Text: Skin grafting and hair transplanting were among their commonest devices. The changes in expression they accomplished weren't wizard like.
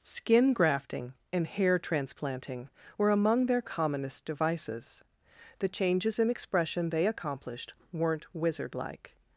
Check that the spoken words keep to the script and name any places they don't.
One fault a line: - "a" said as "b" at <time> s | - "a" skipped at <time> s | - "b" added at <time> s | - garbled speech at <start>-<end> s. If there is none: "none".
none